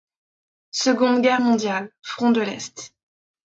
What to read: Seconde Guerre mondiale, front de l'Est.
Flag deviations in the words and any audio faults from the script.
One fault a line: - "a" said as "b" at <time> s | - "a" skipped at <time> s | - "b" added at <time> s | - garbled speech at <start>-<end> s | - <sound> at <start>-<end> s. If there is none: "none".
none